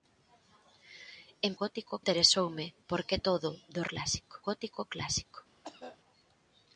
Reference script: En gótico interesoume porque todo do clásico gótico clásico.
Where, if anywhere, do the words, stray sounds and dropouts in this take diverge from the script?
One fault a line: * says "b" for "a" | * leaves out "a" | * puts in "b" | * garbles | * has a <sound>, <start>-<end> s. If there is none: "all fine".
* has a cough, 5.6-6.0 s